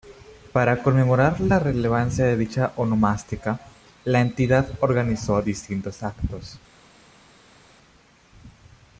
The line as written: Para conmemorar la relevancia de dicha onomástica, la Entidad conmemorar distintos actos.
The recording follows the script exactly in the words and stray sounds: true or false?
false